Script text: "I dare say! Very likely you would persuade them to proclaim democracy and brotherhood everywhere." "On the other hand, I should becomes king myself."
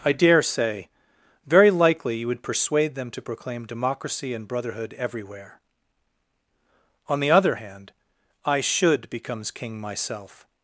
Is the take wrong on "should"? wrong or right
right